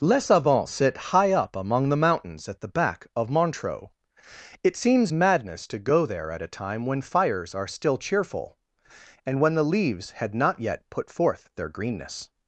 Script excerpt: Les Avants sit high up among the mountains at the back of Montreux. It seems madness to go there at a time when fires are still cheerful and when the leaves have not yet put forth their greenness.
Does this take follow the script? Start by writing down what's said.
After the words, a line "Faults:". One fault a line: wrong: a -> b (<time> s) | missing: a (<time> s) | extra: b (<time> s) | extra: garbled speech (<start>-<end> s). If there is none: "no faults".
Les Avants sit high up among the mountains at the back of Montreux. It seems madness to go there at a time when fires are still cheerful and when the leaves had not yet put forth their greenness.
Faults:
wrong: have -> had (10.1 s)